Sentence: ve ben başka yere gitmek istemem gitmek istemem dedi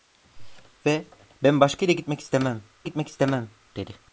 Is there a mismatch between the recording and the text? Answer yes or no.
no